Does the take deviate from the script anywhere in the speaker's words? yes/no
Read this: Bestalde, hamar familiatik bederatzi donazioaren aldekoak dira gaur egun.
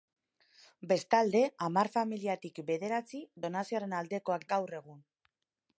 yes